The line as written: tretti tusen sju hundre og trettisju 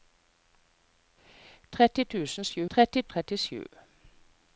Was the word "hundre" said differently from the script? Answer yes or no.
yes